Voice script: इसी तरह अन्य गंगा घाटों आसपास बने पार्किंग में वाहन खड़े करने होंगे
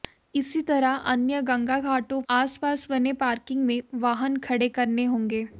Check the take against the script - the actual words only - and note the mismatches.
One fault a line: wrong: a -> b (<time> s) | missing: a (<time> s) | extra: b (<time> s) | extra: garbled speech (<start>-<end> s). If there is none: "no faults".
no faults